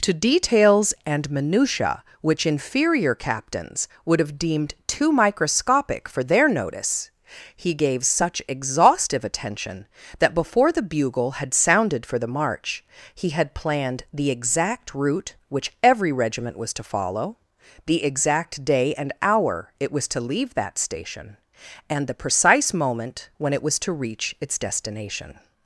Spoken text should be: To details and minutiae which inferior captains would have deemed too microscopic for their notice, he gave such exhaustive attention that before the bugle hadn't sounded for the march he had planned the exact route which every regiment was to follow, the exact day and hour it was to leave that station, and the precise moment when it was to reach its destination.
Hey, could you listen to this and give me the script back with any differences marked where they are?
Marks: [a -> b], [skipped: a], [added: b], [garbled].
To details and minutiae which inferior captains would have deemed too microscopic for their notice, he gave such exhaustive attention that before the bugle [hadn't -> had] sounded for the march he had planned the exact route which every regiment was to follow, the exact day and hour it was to leave that station, and the precise moment when it was to reach its destination.